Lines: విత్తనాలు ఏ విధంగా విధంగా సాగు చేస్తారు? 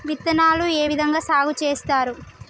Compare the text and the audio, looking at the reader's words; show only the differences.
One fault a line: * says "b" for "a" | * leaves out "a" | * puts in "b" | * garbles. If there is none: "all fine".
* leaves out "విధంగా"